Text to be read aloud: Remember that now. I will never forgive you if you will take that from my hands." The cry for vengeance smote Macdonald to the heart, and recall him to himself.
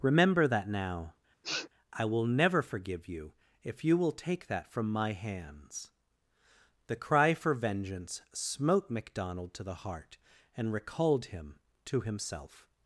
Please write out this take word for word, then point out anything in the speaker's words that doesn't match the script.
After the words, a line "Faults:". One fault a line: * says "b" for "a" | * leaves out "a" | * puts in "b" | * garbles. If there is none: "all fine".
Remember that now. I will never forgive you if you will take that from my hands." The cry for vengeance smote Macdonald to the heart, and recalled him to himself.
Faults:
* says "recalled" for "recall"